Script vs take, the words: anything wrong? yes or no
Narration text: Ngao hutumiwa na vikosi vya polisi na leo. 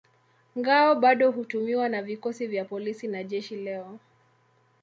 yes